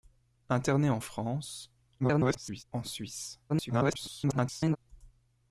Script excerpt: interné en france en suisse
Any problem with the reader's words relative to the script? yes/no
yes